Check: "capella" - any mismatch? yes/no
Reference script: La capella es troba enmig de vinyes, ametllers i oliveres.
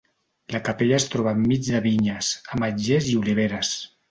no